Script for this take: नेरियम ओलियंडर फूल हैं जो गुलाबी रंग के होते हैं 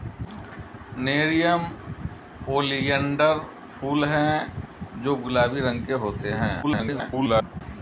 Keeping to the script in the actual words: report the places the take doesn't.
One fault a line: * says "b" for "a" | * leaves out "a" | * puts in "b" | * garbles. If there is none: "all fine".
* garbles